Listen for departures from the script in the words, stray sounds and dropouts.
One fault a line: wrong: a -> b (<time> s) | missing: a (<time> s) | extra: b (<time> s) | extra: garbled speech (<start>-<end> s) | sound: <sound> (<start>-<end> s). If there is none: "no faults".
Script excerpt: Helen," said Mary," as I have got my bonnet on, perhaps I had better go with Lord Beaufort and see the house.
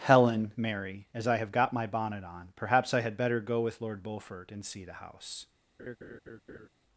missing: said (0.5 s)
sound: laugh (5.8-6.7 s)